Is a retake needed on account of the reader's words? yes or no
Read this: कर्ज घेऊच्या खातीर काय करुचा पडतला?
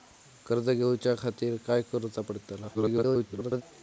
yes